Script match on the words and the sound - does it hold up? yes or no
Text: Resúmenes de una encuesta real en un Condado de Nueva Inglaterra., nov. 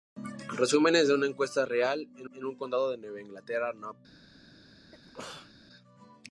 no